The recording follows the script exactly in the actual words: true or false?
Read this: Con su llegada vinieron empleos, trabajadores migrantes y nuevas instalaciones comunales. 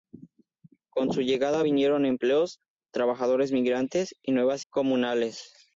false